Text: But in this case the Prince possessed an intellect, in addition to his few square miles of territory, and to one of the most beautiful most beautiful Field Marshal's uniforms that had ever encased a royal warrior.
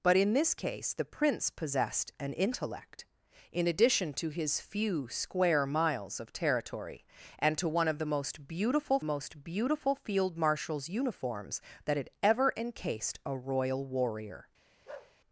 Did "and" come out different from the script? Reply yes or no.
no